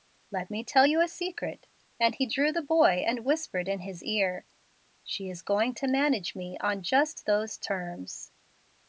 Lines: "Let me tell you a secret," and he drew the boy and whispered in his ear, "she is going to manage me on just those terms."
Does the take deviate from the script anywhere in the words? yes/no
no